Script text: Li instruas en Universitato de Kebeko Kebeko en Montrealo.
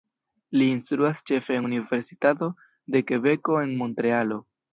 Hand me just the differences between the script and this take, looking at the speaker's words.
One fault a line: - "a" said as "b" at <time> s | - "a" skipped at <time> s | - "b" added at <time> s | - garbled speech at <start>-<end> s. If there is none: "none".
- "ĉefe" added at 1.3 s
- "Kebeko" skipped at 3.6 s